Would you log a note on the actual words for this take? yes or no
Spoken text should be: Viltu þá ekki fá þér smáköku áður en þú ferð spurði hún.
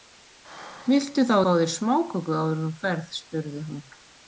yes